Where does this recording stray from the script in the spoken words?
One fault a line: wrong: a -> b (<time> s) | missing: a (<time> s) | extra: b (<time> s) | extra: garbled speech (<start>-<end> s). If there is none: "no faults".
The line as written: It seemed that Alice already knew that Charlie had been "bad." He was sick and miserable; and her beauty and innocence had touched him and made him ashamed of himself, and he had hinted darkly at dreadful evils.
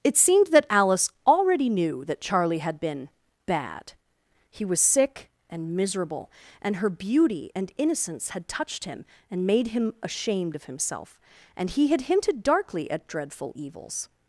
no faults